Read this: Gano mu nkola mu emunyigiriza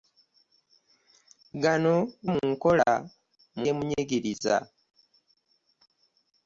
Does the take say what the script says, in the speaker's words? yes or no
yes